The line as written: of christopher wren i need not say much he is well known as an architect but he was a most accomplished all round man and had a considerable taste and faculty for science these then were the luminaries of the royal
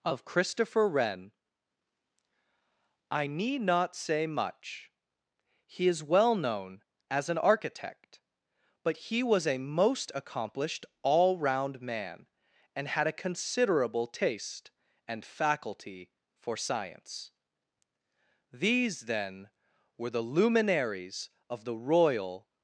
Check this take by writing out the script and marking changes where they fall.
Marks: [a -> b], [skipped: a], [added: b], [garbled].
of christopher wren i need not say much he is well known as an architect but he was a most accomplished all round man and had a considerable taste and faculty for science these then were the luminaries of the royal